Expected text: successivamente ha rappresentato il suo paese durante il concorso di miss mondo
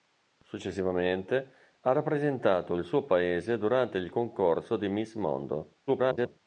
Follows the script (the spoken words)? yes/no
no